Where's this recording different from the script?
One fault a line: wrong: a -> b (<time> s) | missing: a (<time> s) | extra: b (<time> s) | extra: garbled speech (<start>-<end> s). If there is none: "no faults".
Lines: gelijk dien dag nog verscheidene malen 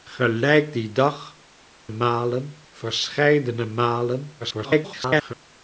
wrong: nog -> malen (1.9 s)
extra: garbled speech (4.4-5.3 s)